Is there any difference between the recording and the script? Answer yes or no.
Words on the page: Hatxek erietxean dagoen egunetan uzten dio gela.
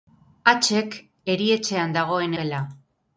yes